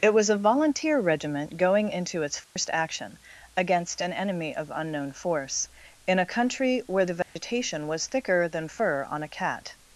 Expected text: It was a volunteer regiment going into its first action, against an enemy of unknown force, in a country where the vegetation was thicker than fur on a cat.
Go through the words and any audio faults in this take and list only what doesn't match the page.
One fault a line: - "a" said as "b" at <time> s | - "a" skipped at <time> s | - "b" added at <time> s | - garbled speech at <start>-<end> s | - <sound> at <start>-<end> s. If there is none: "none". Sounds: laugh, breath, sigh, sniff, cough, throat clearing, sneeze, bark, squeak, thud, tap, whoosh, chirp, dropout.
- dropout at 2.4-2.6 s
- dropout at 7.2-7.4 s